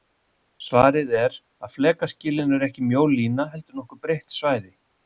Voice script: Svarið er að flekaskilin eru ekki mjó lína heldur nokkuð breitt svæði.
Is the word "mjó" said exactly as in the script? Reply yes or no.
yes